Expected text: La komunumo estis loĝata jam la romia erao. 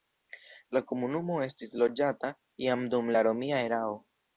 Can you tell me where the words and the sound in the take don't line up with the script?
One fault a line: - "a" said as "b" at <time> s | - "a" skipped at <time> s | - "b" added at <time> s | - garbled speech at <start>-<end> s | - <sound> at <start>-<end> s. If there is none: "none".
- "dum" added at 3.0 s